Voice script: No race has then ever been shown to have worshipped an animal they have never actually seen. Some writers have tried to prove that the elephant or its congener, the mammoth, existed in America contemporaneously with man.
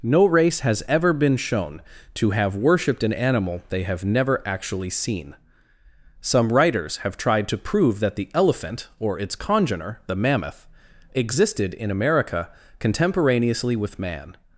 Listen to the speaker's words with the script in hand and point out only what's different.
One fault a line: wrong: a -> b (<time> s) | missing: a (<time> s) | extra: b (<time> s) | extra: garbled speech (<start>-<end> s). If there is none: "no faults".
missing: then (0.8 s)